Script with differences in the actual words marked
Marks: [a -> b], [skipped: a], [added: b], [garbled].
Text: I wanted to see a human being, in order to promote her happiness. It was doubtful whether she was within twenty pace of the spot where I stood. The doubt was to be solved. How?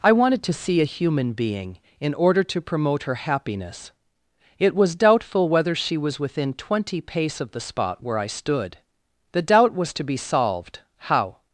I wanted to see a human being, in order to promote her happiness. It was doubtful whether she was within twenty pace of the spot where I stood. The doubt was to be solved. How?